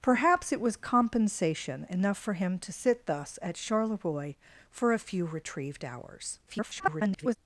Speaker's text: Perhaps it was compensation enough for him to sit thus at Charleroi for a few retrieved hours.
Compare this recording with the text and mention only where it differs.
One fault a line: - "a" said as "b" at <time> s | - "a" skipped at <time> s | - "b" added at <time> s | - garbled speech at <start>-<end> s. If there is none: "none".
- garbled speech at 6.5-7.4 s